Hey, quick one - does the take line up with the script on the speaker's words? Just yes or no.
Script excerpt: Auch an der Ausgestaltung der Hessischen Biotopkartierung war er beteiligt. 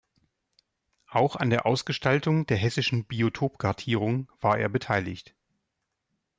yes